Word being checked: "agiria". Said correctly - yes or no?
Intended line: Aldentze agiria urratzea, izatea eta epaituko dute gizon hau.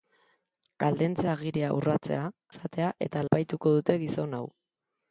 yes